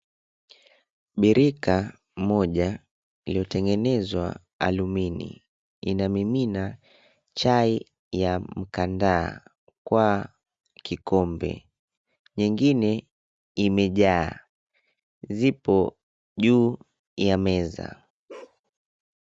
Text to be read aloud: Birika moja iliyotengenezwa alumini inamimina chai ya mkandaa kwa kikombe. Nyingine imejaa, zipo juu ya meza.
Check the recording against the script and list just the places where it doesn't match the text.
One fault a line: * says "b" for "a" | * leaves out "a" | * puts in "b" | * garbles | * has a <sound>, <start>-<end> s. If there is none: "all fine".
* has a bark, 18.3-18.6 s